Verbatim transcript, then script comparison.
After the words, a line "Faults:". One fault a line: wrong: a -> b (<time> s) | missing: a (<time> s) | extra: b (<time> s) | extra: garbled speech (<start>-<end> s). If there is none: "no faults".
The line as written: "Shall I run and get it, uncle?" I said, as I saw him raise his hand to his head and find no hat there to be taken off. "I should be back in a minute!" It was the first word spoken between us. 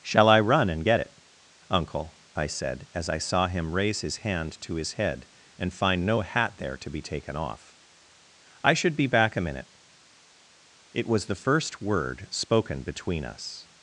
"Shall I run and get it, uncle?" I said, as I saw him raise his hand to his head and find no hat there to be taken off. "I should be back a minute!" It was the first word spoken between us.
Faults:
missing: in (9.4 s)